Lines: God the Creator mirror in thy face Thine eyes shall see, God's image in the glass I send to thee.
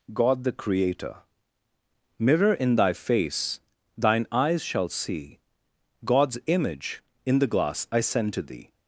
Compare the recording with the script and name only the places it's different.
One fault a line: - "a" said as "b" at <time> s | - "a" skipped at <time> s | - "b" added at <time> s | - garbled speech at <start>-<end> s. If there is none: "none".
none